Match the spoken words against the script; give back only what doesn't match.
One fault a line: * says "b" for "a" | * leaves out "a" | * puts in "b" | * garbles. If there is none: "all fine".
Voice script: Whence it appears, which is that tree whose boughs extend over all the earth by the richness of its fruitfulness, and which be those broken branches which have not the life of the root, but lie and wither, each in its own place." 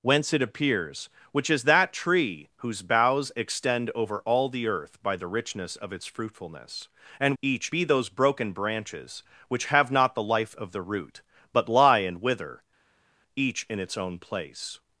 * says "each" for "which"